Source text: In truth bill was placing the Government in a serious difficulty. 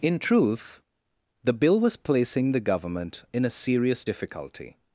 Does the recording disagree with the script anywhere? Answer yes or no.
yes